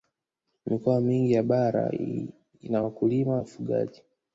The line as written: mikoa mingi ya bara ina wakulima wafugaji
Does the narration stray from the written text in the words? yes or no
no